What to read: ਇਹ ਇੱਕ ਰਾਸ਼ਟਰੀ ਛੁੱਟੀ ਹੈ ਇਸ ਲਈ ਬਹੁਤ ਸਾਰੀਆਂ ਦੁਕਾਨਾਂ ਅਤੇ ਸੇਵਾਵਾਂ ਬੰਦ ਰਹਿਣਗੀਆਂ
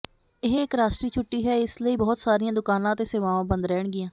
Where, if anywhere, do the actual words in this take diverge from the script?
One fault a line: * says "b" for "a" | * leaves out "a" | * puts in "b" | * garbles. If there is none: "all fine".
all fine